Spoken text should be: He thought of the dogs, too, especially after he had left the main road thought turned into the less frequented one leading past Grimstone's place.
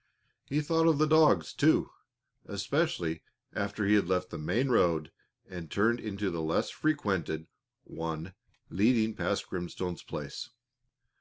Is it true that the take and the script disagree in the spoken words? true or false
true